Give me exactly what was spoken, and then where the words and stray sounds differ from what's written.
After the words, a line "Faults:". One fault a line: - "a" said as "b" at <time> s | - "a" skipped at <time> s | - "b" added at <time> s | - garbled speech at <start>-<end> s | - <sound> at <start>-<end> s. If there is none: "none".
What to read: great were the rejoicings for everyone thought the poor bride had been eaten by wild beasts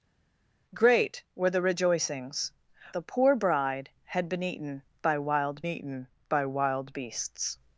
great were the rejoicings the poor bride had been eaten by wild eaten by wild beasts
Faults:
- "for everyone thought" skipped at 2.5 s
- "eaten by wild" added at 5.7 s